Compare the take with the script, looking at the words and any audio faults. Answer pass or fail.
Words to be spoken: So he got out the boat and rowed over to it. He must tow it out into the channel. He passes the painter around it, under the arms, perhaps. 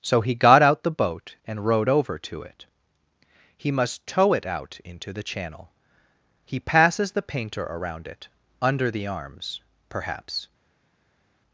pass